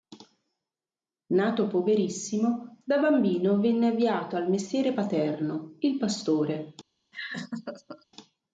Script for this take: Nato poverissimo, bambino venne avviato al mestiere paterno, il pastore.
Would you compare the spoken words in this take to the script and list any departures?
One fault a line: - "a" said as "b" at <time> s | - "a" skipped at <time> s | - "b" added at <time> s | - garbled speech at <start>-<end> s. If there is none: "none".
- "da" added at 2.8 s